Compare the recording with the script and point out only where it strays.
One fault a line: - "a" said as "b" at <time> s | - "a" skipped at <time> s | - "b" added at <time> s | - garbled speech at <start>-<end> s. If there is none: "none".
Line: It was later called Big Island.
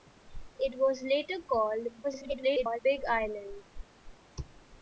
- garbled speech at 2.0-2.8 s